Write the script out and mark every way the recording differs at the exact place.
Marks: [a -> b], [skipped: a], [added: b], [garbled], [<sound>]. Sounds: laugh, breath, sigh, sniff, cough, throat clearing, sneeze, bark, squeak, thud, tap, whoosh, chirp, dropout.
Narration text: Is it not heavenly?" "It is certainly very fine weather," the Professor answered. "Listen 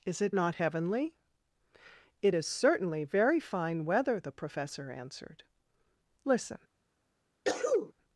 Is it not heavenly?" "It is certainly very fine weather," the Professor answered. "Listen [sneeze]